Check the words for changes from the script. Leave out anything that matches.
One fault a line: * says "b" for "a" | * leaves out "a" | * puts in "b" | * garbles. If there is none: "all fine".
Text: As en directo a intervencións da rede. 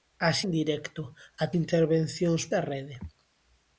all fine